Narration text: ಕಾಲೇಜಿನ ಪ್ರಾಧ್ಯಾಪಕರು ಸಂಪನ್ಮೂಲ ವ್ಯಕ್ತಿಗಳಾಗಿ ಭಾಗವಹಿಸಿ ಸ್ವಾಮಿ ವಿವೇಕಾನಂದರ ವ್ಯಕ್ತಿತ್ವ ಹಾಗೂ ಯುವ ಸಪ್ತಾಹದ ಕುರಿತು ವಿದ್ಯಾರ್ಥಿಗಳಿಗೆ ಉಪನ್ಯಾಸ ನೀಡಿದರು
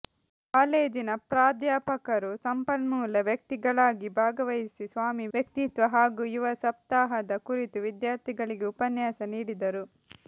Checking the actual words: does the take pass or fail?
fail